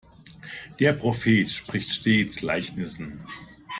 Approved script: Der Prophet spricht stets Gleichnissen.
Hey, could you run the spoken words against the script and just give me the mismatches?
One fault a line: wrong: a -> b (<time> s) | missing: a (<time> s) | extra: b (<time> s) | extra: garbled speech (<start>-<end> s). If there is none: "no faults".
no faults